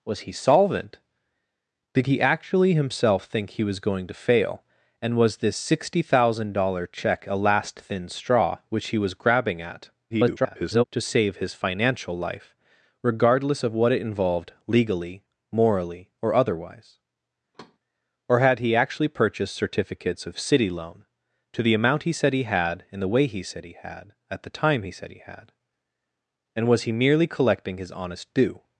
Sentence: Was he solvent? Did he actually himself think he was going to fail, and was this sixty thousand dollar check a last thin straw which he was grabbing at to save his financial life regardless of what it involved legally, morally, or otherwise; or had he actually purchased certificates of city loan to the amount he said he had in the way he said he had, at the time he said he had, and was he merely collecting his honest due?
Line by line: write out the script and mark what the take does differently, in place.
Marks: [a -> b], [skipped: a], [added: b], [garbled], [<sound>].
Was he solvent? Did he actually himself think he was going to fail, and was this sixty thousand dollar check a last thin straw which he was grabbing at [garbled] to save his financial life regardless of what it involved legally, morally, or otherwise; [thud] or had he actually purchased certificates of city loan to the amount he said he had in the way he said he had, at the time he said he had, and was he merely collecting his honest due?